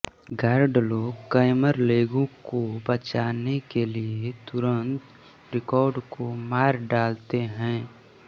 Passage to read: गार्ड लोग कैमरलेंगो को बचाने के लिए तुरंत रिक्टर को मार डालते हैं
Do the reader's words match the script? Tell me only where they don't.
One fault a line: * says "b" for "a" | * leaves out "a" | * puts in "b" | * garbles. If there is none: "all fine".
all fine